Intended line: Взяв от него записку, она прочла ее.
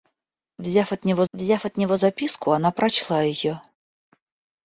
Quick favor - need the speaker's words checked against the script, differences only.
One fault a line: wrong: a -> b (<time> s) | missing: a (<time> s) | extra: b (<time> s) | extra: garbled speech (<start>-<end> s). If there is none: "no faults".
extra: взяв от него (1.3 s)